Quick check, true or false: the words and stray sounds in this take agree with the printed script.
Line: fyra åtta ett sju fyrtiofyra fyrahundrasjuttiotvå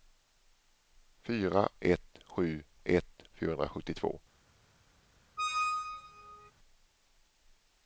false